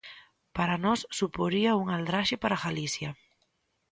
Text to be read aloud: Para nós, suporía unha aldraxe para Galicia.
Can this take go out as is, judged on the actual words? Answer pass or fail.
pass